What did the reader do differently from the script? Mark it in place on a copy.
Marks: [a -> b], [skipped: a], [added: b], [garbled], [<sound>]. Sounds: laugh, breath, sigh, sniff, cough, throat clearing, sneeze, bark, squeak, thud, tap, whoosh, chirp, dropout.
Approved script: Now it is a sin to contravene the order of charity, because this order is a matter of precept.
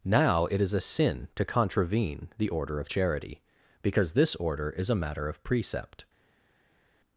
Now it is a sin to contravene the order of charity, because this order is a matter of precept.